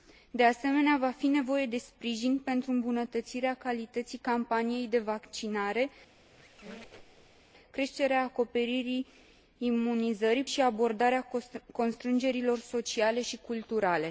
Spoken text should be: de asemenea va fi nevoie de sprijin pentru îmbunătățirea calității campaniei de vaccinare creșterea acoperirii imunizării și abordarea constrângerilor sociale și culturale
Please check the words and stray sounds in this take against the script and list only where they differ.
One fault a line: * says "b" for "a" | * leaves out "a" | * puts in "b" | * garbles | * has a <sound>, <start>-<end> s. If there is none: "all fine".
* has a squeak, 6.1-7.4 s